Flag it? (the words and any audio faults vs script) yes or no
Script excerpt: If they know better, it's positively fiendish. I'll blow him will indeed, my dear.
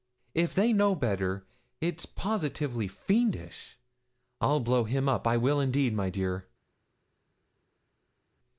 yes